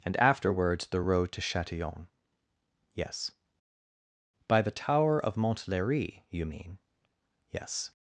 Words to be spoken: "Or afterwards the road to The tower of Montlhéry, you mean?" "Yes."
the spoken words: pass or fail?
fail